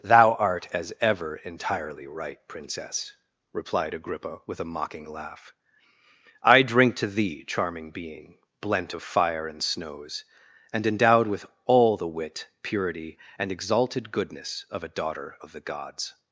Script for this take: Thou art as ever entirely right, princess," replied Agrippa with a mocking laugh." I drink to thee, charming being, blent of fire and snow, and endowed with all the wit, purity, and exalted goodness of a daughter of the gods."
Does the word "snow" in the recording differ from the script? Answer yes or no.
yes